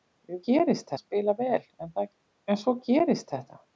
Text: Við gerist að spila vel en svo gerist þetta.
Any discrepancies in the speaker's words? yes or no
no